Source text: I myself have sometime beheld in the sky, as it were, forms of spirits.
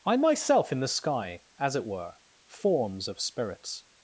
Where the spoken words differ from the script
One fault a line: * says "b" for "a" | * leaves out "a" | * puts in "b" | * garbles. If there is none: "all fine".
* leaves out "have sometime beheld"